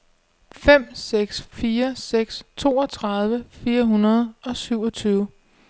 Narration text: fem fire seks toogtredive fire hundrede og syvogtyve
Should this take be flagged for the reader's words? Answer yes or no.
yes